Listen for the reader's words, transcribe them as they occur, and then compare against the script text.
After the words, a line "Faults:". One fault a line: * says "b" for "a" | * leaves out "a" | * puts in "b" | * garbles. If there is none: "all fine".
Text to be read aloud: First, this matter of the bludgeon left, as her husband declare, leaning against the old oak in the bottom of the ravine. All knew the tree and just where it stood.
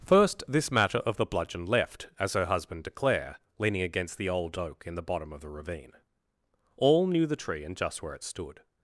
First, this matter of the bludgeon left, as her husband declare, leaning against the old oak in the bottom of the ravine. All knew the tree and just where it stood.
Faults:
all fine